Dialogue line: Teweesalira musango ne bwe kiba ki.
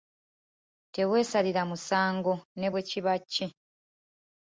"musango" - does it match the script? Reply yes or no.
yes